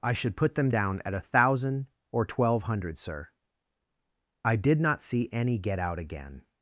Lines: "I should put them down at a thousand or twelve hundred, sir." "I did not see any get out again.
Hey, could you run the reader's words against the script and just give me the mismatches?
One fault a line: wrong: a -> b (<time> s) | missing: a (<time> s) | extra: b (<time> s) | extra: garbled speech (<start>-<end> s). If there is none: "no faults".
no faults